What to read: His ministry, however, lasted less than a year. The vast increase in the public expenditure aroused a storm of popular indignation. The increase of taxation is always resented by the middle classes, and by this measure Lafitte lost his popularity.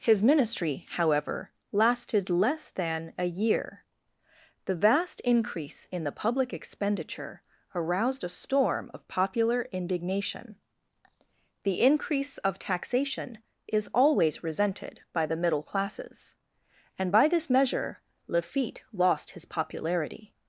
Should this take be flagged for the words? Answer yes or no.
no